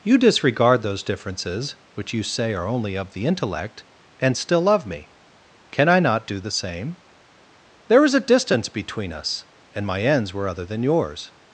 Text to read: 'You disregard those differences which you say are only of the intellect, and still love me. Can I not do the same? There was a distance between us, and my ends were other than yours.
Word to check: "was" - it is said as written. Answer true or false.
false